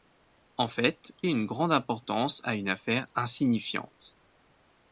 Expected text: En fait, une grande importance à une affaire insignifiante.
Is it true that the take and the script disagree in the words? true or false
false